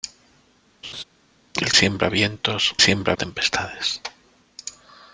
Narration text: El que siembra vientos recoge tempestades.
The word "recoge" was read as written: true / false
false